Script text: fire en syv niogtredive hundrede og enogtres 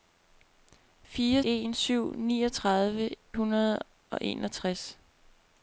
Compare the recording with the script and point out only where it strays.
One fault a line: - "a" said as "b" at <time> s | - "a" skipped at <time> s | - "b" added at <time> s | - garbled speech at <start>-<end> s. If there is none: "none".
none